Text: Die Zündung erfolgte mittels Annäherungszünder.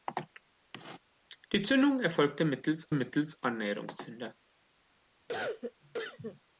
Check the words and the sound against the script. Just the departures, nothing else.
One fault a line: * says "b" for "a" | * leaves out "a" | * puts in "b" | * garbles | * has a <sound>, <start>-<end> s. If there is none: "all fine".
* puts in "mittels"
* has a cough, 5.3-6.4 s